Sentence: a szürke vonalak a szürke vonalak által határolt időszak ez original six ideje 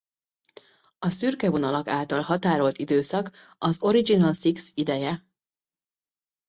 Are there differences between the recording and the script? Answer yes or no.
yes